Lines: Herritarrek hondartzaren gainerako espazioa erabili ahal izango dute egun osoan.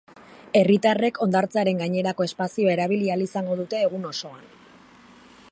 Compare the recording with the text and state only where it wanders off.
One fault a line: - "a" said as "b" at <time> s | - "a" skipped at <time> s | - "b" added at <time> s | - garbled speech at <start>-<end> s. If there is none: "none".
none